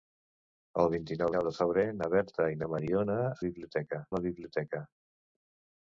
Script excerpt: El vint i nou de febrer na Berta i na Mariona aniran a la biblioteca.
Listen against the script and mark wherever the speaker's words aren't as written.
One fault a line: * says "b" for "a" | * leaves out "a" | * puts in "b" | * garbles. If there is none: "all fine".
* puts in "nou"
* says "biblioteca" for "aniran"